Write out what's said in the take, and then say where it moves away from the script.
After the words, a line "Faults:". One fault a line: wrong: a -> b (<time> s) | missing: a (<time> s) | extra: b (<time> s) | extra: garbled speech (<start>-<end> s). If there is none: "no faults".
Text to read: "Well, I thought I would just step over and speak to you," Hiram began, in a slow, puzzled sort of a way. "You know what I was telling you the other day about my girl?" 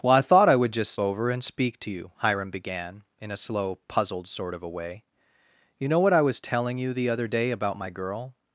"Well, I thought I would just over and speak to you," Hiram began, in a slow, puzzled sort of a way. "You know what I was telling you the other day about my girl?"
Faults:
missing: step (0.9 s)